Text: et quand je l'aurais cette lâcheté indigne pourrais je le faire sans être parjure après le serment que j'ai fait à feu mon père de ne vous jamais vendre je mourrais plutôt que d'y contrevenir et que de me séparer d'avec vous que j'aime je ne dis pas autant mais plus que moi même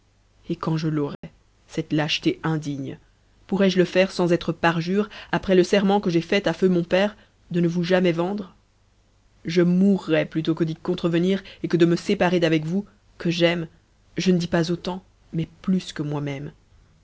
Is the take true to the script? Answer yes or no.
yes